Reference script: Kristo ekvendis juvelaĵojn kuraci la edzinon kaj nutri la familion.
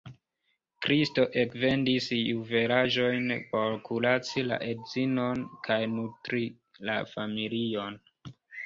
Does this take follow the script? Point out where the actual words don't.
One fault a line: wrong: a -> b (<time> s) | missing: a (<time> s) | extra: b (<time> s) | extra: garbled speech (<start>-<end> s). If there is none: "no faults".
extra: por (3.5 s)